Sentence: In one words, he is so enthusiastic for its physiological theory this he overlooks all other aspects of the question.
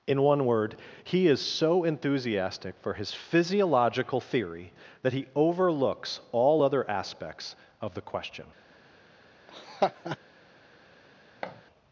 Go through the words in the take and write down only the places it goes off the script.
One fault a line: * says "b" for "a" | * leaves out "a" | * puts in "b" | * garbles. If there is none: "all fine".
* says "word" for "words"
* says "his" for "its"
* says "that" for "this"